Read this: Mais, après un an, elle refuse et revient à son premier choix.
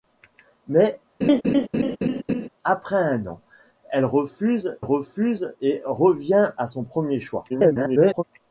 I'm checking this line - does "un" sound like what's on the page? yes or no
yes